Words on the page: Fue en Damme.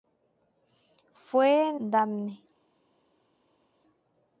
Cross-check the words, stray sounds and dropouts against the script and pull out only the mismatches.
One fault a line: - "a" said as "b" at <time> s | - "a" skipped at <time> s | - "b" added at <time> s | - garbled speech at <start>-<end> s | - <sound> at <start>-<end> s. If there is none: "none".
none